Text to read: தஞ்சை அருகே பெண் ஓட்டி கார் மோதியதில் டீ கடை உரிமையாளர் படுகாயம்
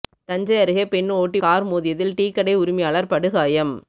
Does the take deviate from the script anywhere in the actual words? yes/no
no